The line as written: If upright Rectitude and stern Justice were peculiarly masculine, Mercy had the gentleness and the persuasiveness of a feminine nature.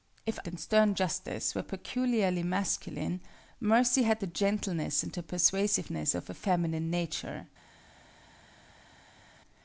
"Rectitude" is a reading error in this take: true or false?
true